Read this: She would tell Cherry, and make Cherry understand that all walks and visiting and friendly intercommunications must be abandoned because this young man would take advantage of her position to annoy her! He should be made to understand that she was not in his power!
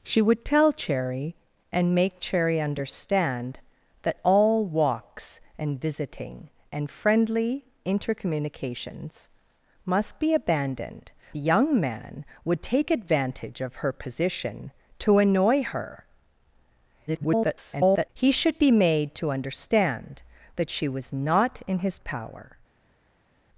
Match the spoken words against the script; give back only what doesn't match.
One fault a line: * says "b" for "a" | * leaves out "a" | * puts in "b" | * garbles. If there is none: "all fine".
* leaves out "because this"
* garbles